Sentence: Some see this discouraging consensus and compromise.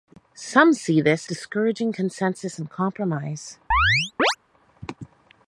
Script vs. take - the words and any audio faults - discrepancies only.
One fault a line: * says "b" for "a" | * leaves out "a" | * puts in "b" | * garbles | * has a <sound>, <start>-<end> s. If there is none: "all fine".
* has a chirp, 3.7-4.4 s